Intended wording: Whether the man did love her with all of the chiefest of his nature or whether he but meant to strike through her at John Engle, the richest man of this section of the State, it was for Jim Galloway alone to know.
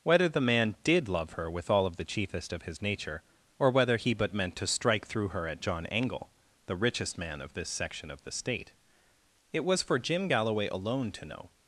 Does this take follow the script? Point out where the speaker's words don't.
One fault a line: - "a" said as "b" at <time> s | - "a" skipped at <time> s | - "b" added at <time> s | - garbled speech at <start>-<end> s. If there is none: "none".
none